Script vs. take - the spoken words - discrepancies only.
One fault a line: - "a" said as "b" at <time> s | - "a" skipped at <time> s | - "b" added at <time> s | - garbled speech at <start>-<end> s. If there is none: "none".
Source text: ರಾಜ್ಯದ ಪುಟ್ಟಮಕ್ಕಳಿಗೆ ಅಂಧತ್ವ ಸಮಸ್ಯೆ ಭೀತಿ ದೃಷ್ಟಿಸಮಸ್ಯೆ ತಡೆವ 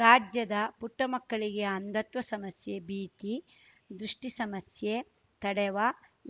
none